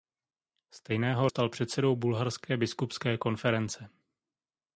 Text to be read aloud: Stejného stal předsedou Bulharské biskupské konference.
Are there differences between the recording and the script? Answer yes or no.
no